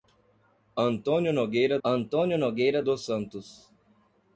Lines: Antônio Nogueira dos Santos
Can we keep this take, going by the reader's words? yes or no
no